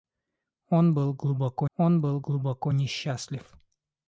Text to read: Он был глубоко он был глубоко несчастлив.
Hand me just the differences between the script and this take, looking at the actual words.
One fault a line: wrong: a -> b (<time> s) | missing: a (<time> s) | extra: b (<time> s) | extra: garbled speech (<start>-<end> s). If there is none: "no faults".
no faults